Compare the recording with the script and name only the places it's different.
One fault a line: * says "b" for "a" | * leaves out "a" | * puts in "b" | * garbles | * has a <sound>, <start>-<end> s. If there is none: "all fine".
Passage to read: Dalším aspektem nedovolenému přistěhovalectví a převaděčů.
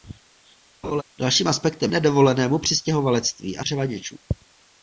* has a laugh, 0.8-1.0 s